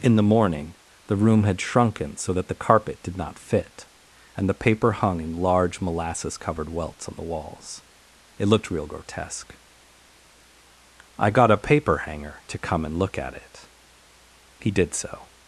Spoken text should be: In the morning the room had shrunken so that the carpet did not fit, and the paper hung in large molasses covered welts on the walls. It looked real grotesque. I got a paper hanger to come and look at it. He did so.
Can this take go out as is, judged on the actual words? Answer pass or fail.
pass